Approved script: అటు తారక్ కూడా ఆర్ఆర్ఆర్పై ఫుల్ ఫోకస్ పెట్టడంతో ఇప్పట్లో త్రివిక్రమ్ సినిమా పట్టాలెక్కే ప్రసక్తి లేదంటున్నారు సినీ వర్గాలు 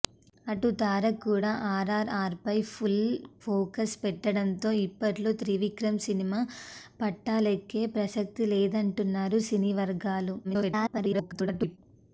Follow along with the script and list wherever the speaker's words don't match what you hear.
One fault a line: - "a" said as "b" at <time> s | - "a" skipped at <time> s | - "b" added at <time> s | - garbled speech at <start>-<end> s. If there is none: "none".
- garbled speech at 10.4-11.8 s